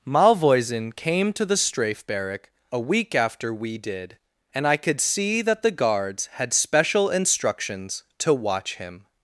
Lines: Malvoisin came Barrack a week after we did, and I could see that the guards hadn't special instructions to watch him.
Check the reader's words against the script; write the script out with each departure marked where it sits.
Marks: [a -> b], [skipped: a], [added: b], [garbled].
Malvoisin came [added: to the Strafe] Barrack a week after we did, and I could see that the guards [hadn't -> had] special instructions to watch him.